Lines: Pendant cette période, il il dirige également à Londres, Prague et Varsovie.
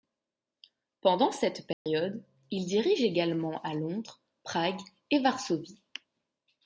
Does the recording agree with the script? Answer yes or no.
no